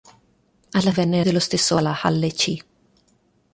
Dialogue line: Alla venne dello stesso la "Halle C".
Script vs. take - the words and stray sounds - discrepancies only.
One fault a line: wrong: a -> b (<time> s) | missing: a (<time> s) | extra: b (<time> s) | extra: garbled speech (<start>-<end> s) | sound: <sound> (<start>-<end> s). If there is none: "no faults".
no faults